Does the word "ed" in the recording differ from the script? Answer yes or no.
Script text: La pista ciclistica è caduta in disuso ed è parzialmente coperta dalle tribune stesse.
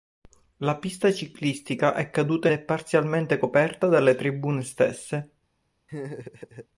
yes